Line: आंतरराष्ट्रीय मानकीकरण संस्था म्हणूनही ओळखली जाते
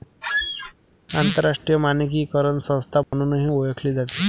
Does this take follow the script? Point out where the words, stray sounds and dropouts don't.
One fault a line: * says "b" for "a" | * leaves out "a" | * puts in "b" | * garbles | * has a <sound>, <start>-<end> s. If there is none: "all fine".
* has a squeak, 0.2-0.7 s
* has a dropout, 3.0-3.1 s